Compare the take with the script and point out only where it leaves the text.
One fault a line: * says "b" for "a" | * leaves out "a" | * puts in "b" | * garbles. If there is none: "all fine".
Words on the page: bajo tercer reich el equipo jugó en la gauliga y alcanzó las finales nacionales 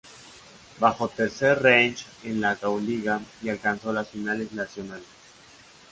* leaves out "el equipo jugó"